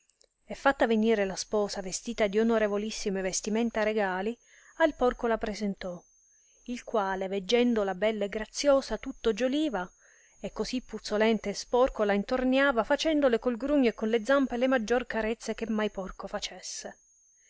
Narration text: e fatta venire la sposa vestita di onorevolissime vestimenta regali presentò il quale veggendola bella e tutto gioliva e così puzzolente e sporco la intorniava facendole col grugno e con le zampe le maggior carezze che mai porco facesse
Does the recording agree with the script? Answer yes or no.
no